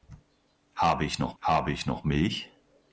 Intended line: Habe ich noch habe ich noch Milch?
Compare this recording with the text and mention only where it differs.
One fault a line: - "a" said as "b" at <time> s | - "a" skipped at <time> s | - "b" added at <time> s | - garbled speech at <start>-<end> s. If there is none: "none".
none